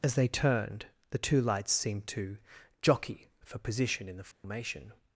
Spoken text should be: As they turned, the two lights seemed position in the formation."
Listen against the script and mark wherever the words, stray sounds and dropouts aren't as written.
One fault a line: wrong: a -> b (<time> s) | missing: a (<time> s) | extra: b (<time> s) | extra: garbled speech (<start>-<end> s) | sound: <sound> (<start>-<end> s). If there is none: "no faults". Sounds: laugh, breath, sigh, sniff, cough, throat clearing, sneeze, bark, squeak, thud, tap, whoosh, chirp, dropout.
extra: to jockey for (2.1 s)
sound: dropout (4.3-4.4 s)